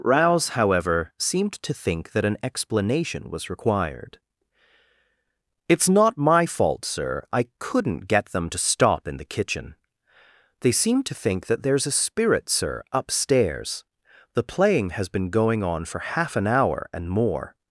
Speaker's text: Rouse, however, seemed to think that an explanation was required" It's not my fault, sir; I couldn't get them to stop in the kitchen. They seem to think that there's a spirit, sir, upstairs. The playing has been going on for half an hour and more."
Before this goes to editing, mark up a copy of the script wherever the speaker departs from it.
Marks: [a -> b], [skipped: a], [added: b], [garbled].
Rouse, however, seemed to think that an explanation was required" It's not my fault, sir; I couldn't get them to stop in the kitchen. They seem to think that there's a spirit, sir, upstairs. The playing has been going on for half an hour and more."